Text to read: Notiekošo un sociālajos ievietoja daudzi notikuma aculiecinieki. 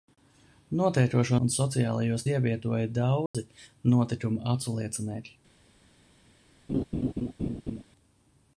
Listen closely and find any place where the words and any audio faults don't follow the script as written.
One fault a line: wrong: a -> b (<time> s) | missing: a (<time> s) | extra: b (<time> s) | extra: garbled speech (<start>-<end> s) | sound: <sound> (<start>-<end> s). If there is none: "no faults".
sound: dropout (3.3-3.3 s)
sound: laugh (6.7-7.8 s)